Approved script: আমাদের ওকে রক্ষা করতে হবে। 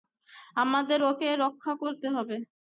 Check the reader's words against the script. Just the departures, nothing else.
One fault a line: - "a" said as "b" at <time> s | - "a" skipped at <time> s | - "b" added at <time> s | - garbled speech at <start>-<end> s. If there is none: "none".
none